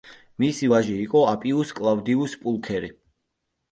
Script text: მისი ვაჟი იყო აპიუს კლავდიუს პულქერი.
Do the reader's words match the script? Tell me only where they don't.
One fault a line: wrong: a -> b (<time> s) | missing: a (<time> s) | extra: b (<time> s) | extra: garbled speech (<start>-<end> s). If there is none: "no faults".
no faults